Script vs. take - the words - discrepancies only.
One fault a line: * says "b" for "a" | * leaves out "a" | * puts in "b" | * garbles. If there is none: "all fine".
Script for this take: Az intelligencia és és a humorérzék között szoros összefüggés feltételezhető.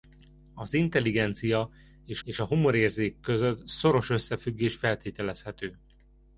all fine